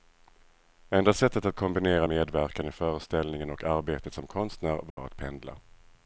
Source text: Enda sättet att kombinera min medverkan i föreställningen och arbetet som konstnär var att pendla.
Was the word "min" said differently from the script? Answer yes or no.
yes